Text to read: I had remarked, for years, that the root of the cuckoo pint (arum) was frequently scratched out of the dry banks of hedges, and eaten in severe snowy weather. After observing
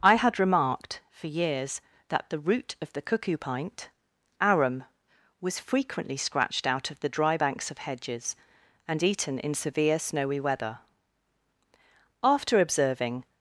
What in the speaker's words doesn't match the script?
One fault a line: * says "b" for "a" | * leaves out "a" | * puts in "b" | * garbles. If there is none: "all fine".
all fine